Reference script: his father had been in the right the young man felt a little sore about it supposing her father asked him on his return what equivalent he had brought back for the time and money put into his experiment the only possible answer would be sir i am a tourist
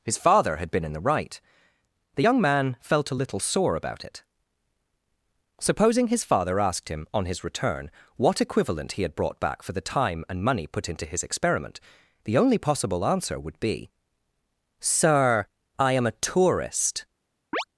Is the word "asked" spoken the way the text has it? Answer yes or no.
yes